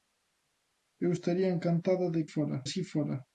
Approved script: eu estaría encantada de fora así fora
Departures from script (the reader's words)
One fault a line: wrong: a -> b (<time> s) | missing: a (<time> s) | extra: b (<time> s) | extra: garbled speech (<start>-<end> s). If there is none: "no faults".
no faults